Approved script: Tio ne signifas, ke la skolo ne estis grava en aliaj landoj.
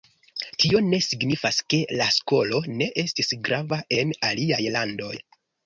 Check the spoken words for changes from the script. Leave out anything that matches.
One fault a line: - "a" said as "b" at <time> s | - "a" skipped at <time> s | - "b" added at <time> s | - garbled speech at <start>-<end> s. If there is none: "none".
none